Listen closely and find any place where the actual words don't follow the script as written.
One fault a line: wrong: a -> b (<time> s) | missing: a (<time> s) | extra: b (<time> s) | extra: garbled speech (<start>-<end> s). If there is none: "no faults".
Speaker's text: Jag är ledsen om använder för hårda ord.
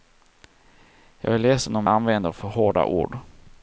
no faults